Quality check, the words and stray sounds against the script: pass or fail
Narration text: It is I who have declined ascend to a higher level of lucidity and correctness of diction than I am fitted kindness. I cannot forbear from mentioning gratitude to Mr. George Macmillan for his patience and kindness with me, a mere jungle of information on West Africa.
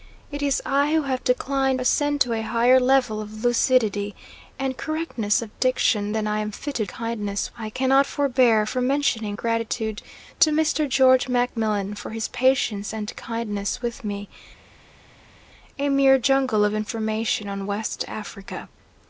pass